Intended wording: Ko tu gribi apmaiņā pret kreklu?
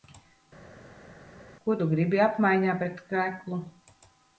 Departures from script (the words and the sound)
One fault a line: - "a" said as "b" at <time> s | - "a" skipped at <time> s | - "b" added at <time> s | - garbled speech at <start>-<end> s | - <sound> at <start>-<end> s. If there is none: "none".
none